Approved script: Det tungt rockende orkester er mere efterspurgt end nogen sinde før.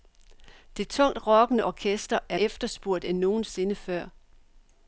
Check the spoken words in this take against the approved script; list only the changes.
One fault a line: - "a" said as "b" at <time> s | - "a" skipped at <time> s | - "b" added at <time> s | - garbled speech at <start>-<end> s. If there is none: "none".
- "mere" skipped at 2.4 s